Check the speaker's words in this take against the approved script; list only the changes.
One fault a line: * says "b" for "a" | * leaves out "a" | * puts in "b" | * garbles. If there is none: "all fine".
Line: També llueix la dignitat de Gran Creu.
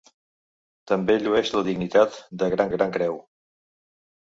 * puts in "Gran"